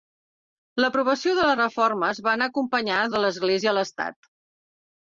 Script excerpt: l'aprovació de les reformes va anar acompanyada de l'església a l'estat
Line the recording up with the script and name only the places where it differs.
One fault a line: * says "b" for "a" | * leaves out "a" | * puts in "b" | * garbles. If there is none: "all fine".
all fine